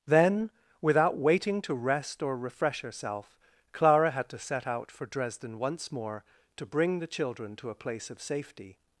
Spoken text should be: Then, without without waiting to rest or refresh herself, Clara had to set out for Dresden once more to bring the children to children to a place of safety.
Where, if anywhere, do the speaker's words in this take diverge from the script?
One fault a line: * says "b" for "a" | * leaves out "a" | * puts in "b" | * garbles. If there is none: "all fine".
* leaves out "without"
* leaves out "children to"